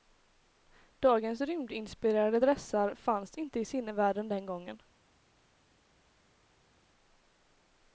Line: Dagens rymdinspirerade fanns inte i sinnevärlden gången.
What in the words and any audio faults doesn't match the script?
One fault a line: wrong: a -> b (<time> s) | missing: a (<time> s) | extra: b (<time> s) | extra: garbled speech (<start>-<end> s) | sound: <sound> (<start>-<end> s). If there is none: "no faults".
extra: dressar (2.4 s)
extra: den (4.3 s)